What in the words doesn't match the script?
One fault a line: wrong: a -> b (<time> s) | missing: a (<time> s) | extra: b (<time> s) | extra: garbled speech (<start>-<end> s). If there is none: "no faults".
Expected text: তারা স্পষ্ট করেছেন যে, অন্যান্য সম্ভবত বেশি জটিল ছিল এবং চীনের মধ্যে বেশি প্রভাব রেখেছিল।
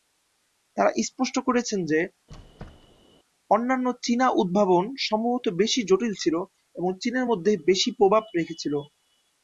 extra: চীনা উদ্ভাবন (4.0 s)